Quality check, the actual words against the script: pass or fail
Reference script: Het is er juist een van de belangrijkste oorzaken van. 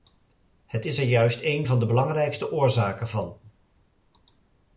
pass